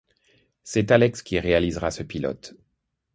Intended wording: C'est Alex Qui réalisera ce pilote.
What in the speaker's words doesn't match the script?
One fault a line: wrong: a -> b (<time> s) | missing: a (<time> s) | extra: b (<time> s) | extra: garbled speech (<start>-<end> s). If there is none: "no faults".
no faults